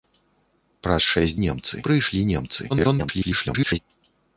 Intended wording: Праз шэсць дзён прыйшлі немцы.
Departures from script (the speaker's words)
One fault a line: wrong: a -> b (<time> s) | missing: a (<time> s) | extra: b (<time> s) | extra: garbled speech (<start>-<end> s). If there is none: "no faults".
wrong: дзён -> немцы (1.5 s)
extra: garbled speech (2.7-3.8 s)